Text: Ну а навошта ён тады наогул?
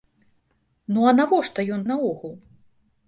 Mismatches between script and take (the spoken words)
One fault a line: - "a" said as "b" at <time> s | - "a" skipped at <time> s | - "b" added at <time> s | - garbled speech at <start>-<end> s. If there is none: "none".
- "тады" skipped at 1.9 s